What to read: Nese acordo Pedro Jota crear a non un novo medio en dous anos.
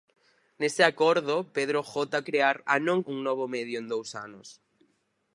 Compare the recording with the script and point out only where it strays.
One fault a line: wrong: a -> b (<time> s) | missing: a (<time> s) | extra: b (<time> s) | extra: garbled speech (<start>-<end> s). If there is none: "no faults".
no faults